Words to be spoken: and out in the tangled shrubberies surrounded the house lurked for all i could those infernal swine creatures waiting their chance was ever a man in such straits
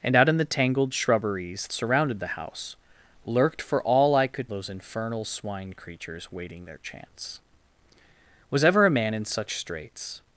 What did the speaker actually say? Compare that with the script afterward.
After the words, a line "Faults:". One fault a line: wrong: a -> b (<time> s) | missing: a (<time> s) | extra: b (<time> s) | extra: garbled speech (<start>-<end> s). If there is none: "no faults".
and out in the tangled shrubberies surrounded the house lurked for all i could those infernal swine creatures waiting their chance was ever a man in such straits
Faults:
no faults